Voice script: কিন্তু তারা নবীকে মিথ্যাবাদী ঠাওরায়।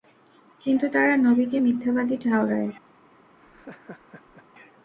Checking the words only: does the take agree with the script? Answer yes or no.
yes